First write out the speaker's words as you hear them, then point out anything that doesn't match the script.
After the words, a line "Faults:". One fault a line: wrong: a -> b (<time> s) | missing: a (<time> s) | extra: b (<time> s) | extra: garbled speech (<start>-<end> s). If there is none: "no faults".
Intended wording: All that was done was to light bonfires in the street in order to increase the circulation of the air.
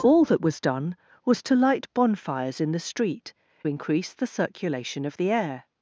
All that was done was to light bonfires in the street increase the circulation of the air.
Faults:
missing: in order to (3.3 s)